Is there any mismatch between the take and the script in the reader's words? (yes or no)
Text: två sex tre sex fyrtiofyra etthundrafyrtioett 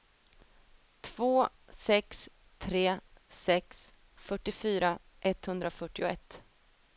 no